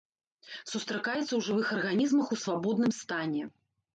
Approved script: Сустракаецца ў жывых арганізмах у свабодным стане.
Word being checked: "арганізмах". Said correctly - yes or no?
yes